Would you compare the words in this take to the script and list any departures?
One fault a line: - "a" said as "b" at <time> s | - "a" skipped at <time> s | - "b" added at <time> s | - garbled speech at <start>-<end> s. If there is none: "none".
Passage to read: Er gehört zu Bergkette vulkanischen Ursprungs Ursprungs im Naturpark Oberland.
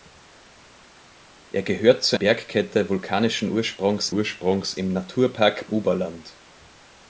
none